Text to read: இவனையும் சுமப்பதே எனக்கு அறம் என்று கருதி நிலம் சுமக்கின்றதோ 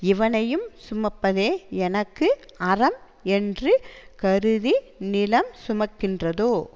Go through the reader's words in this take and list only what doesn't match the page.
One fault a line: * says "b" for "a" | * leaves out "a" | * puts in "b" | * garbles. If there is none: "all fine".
all fine